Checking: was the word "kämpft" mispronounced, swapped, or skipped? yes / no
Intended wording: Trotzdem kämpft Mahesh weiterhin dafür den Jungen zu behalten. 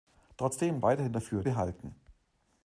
yes